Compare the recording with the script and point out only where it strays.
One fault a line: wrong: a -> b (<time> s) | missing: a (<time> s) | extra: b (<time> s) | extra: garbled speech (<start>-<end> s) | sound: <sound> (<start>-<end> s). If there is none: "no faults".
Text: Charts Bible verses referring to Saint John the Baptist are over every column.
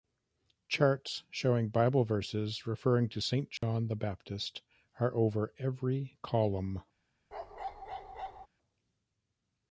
extra: showing (1.3 s)
sound: dropout (3.6-3.6 s)
sound: bark (7.3-8.5 s)